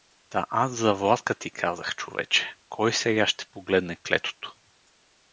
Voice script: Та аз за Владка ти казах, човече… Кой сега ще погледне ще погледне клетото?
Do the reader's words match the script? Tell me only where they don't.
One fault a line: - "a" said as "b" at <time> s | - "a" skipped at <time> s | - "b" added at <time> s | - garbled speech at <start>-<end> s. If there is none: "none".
- "ще погледне" skipped at 4.0 s